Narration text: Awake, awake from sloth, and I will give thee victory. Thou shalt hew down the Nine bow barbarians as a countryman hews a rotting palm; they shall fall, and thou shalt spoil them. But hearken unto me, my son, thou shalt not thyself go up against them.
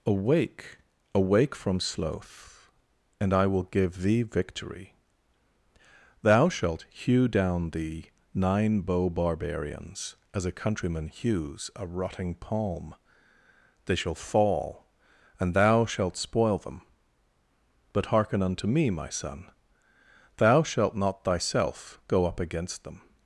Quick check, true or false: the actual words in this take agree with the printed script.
true